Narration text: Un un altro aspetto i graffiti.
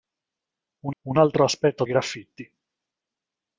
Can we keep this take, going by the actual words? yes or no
yes